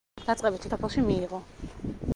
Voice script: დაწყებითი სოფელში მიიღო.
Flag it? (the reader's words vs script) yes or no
no